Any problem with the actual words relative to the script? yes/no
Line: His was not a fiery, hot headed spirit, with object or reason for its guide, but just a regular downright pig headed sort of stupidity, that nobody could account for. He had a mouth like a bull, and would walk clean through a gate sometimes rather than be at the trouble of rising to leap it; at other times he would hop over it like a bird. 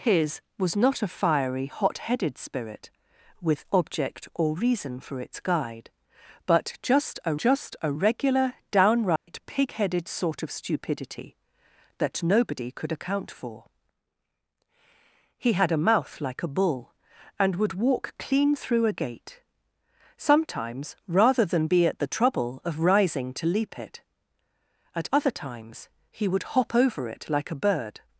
yes